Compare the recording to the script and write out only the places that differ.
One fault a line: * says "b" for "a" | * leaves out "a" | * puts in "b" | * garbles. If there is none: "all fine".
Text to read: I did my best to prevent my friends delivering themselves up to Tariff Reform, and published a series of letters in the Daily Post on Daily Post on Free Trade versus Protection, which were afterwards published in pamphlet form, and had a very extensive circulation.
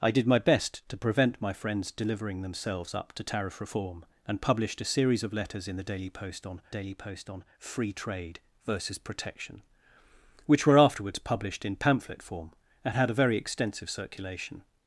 all fine